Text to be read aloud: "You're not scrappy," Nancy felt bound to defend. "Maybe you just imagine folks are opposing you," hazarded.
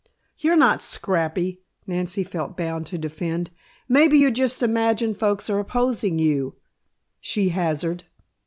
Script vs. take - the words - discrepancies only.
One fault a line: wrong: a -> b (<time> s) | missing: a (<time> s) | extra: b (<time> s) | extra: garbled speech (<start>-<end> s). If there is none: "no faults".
extra: she (7.2 s)